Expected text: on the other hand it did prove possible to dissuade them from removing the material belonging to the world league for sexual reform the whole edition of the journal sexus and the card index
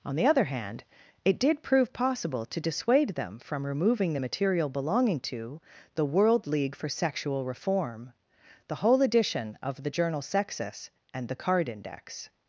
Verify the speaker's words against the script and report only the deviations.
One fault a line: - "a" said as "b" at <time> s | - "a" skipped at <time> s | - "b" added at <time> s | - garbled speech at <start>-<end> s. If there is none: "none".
none